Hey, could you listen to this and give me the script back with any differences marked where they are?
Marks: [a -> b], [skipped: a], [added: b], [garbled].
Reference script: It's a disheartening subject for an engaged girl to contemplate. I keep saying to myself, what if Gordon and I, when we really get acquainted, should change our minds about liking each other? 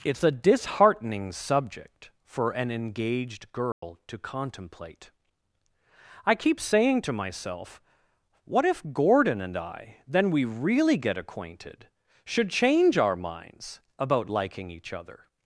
It's a disheartening subject for an engaged girl to contemplate. I keep saying to myself, what if Gordon and I, [when -> then] we really get acquainted, should change our minds about liking each other?